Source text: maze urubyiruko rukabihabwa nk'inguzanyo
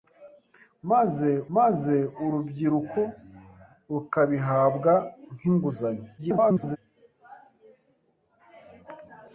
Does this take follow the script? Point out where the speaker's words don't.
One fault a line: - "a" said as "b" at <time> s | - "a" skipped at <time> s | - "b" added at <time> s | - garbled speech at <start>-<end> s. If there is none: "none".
- "maze" added at 1.6 s
- garbled speech at 6.2-6.8 s